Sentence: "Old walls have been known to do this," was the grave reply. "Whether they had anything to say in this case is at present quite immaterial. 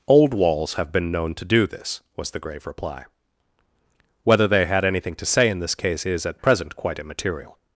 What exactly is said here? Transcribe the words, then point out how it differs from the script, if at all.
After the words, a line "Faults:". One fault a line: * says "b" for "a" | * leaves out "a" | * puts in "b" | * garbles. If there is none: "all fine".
"Old walls have been known to do this," was the grave reply. "Whether they had anything to say in this case is at present quite immaterial.
Faults:
all fine